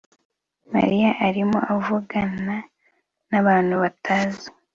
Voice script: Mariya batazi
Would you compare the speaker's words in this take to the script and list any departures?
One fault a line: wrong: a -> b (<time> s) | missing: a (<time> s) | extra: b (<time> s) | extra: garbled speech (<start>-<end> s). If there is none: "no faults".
extra: arimo avugana nabantu (1.3 s)